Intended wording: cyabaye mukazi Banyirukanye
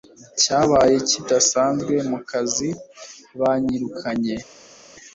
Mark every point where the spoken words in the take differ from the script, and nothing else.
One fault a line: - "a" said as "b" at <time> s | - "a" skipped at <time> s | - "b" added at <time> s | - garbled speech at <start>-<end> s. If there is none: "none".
- "kidasanzwe" added at 1.1 s